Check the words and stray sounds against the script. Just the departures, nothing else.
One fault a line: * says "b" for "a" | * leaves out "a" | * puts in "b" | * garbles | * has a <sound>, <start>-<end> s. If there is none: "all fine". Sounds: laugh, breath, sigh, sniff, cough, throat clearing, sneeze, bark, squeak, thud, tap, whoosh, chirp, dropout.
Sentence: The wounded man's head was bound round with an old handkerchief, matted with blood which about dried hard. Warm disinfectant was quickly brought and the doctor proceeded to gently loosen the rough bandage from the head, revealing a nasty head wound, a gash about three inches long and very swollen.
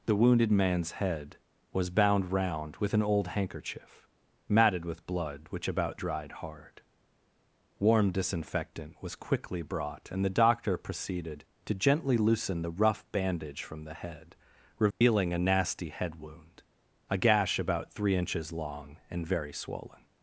* has a dropout, 14.9-15.0 s